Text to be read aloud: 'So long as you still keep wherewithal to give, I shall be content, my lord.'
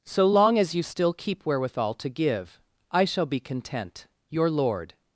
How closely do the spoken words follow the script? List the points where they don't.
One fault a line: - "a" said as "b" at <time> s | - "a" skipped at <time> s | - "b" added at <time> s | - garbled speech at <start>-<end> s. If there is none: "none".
- "my" said as "your" at 4.3 s